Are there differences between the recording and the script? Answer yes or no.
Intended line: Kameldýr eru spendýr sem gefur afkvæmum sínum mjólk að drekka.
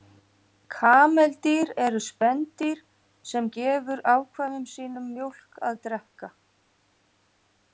no